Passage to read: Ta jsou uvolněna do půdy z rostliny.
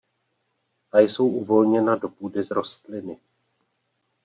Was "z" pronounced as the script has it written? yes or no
yes